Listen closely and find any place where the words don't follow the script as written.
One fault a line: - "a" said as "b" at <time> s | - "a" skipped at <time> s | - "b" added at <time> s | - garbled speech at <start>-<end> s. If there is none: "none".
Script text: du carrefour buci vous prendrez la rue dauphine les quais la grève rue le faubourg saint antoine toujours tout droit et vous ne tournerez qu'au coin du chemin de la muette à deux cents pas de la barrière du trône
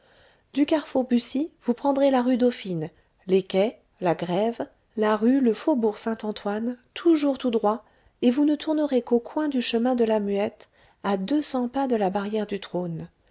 - "la" added at 5.0 s